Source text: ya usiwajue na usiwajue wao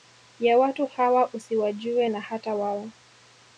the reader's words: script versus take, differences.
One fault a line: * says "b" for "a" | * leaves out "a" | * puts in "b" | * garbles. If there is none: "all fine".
* puts in "watu hawa"
* says "hata" for "usiwajue"